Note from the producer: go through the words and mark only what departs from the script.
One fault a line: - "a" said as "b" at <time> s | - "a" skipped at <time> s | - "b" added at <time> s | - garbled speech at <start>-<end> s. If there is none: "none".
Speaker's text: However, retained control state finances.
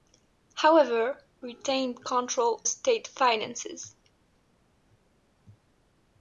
none